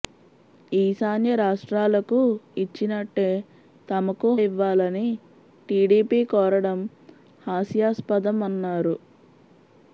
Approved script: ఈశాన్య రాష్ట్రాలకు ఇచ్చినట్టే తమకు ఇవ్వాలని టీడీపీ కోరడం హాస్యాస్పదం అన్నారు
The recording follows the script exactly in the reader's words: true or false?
true